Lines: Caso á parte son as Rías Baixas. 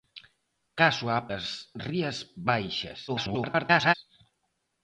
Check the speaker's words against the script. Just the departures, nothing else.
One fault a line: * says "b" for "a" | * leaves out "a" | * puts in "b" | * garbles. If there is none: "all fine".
* leaves out "parte son"
* garbles